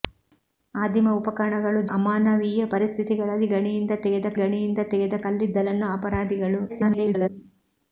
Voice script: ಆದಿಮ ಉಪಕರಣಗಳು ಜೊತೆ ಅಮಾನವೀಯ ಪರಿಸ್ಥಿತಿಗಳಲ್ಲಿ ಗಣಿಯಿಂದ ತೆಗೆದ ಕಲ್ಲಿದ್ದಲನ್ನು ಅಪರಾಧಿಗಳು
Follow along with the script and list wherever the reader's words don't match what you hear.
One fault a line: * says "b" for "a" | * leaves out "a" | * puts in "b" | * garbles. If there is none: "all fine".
* leaves out "ಜೊತೆ"
* puts in "ಗಣಿಯಿಂದ ತೆಗೆದ"
* garbles